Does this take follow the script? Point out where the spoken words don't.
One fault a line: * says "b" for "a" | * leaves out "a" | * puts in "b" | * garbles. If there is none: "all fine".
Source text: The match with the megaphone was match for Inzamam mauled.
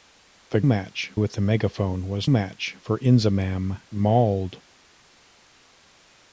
all fine